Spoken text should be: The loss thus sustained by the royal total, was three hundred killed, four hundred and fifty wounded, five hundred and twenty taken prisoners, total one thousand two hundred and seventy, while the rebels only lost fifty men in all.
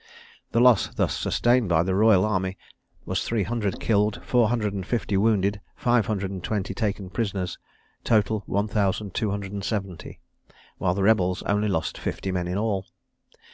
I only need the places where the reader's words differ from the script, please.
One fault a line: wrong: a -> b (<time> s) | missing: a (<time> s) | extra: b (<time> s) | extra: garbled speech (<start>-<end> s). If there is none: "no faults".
wrong: total -> army (2.2 s)